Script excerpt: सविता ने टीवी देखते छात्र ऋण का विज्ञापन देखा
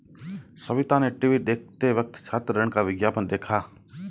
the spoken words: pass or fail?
fail